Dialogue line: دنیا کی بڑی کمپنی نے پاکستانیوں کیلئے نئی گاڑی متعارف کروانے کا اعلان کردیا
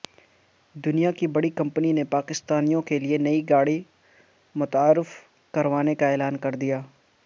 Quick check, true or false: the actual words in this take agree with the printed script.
true